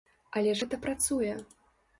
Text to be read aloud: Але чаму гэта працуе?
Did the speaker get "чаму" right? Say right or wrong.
wrong